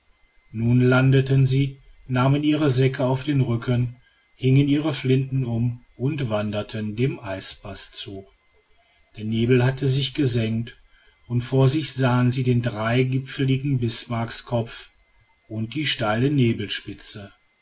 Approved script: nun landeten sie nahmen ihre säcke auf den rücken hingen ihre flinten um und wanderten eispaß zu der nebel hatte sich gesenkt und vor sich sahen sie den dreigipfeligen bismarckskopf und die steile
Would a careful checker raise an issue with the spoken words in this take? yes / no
yes